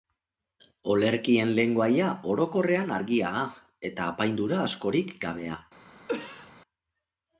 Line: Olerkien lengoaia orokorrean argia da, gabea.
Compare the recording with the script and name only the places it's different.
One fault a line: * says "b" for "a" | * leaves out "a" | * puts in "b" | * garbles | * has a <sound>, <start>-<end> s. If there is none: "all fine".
* puts in "eta apaindura askorik"
* has a cough, 6.1-6.5 s